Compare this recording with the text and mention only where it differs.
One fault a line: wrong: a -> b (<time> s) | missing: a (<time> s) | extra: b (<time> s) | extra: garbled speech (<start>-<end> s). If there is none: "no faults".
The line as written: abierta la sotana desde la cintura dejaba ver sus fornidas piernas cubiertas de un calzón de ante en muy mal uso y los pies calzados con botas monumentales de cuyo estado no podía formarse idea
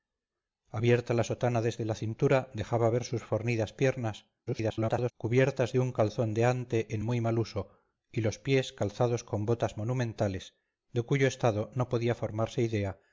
extra: garbled speech (4.5-5.1 s)